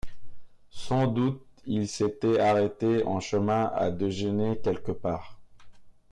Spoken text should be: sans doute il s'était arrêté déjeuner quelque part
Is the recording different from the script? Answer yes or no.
yes